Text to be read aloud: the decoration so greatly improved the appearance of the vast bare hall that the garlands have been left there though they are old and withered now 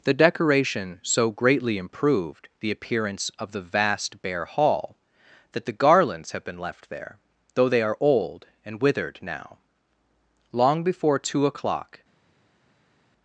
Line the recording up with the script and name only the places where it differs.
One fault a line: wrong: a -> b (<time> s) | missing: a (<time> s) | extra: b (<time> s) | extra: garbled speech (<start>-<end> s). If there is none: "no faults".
extra: long before two o'clock (10.5 s)